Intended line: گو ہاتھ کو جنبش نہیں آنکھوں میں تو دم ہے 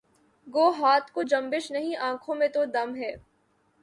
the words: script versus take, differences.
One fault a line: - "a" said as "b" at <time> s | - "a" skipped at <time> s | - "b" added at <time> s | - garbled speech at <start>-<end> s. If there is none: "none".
none